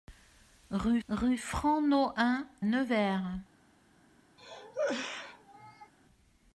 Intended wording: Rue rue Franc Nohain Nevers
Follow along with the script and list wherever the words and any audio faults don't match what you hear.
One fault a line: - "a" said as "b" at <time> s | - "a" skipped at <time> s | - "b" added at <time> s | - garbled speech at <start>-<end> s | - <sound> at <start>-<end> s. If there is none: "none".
- cough at 4.4-5.9 s